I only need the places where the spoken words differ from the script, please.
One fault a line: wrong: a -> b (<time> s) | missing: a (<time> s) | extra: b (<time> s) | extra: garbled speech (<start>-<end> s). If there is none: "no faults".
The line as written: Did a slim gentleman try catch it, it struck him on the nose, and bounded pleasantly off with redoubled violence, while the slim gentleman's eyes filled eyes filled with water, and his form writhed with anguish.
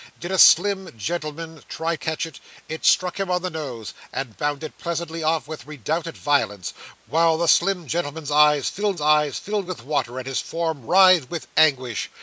no faults